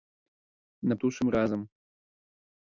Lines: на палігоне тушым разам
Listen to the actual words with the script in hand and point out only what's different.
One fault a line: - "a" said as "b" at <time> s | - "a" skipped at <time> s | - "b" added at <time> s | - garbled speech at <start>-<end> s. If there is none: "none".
- "палігоне" skipped at 1.0 s